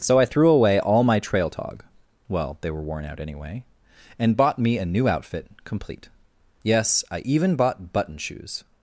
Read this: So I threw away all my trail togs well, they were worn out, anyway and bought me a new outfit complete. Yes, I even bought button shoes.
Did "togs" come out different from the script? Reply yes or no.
yes